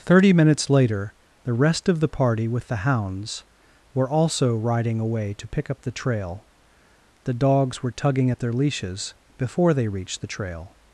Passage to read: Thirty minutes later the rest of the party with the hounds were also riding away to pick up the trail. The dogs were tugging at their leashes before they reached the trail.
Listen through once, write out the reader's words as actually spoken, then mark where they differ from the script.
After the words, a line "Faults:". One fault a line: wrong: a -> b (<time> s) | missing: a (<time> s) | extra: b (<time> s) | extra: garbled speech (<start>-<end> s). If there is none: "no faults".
Thirty minutes later the rest of the party with the hounds were also riding away to pick up the trail. The dogs were tugging at their leashes before they reached the trail.
Faults:
no faults